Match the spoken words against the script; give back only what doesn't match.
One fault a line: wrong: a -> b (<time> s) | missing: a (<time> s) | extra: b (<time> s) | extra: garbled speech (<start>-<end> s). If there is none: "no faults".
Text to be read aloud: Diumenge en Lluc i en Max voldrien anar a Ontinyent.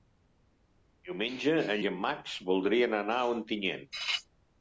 missing: Lluc (1.8 s)